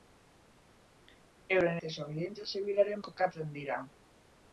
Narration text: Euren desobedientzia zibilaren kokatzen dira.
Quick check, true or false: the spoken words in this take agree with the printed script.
true